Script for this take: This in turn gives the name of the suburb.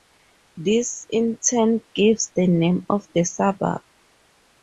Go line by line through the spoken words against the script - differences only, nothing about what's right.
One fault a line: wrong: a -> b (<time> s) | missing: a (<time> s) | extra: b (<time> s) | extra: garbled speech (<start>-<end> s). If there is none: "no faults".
no faults